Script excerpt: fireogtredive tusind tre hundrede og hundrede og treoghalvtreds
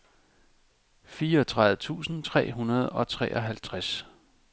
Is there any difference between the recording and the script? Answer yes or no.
yes